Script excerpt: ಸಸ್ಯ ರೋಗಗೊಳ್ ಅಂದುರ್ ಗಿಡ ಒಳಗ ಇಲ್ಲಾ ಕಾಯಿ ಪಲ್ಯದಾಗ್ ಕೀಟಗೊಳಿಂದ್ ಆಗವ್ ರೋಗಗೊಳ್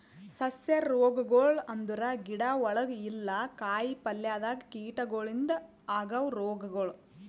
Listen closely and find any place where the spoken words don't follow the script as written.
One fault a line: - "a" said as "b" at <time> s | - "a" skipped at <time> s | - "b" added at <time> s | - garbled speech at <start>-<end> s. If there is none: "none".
none